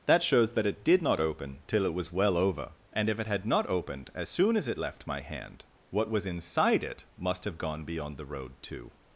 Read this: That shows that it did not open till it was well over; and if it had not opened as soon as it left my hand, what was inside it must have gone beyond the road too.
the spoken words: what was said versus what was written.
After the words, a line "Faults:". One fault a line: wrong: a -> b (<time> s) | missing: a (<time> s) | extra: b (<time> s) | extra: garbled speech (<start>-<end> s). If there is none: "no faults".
That shows that it did not open till it was well over; and if it had not opened as soon as it left my hand, what was inside it must have gone beyond the road too.
Faults:
no faults